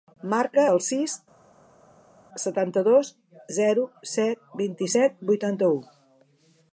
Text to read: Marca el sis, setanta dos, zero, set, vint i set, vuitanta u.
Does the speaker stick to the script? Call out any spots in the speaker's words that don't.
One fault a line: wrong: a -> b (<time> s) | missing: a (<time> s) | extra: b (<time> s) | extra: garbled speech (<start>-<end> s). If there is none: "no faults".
no faults